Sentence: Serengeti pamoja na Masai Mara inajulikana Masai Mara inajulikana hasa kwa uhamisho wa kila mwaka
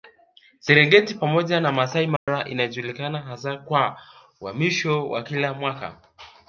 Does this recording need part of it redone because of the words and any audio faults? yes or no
yes